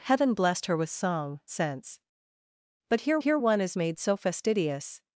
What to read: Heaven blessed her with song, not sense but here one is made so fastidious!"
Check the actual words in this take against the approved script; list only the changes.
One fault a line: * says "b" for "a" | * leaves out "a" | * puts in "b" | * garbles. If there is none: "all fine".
* leaves out "not"
* puts in "here"